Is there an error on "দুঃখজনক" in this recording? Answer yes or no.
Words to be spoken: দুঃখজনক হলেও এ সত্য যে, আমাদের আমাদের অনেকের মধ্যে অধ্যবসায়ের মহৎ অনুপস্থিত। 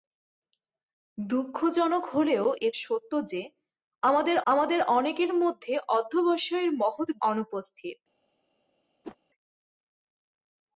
no